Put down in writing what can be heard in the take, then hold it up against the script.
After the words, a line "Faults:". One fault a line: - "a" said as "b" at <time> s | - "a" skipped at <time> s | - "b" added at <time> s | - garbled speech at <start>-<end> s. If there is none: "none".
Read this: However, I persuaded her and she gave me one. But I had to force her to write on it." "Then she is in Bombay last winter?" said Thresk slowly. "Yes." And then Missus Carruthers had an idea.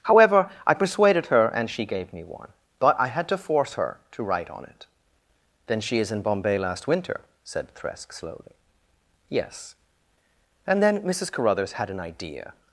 However, I persuaded her and she gave me one. But I had to force her to write on it." "Then she is in Bombay last winter?" said Thresk slowly. "Yes." And then Missus Carruthers had an idea.
Faults:
none